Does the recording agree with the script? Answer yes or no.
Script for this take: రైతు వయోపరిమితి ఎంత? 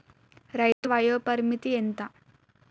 yes